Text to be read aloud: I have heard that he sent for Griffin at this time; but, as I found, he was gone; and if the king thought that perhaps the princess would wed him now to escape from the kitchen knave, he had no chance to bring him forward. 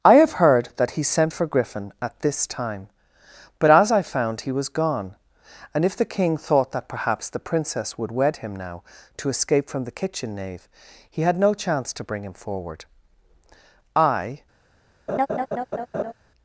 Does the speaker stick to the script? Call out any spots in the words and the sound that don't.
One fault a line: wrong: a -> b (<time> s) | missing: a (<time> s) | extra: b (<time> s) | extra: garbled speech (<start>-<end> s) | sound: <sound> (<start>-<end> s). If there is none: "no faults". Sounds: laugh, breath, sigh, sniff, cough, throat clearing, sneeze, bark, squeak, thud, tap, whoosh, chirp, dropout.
extra: I (14.0 s)
sound: laugh (15.1-16.1 s)